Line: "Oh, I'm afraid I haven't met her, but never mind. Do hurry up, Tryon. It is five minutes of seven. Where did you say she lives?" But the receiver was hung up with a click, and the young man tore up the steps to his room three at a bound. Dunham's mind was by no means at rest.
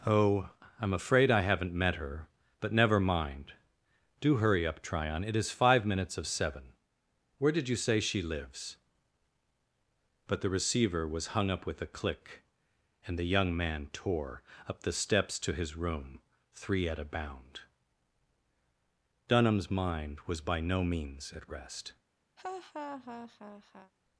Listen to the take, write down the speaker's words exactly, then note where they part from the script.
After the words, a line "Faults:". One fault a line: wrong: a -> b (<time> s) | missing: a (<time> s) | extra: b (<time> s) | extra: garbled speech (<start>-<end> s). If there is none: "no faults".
"Oh, I'm afraid I haven't met her, but never mind. Do hurry up, Tryon. It is five minutes of seven. Where did you say she lives?" But the receiver was hung up with a click, and the young man tore up the steps to his room three at a bound. Dunham's mind was by no means at rest.
Faults:
no faults